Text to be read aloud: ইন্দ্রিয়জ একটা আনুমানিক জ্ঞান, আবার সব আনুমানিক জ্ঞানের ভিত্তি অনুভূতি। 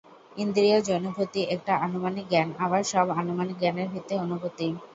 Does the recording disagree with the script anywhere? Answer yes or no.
yes